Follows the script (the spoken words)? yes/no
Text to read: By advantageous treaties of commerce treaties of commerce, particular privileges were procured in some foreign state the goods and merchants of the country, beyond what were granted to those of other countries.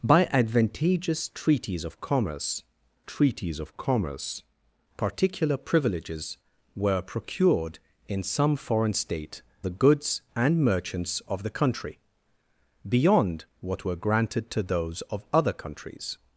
yes